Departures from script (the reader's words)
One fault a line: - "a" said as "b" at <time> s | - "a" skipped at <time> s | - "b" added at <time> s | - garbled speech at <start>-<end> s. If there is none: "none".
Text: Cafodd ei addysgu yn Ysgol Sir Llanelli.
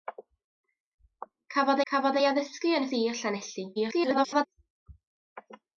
- "cafodd" added at 1.9 s
- "Ysgol" skipped at 2.9 s
- garbled speech at 3.8-4.5 s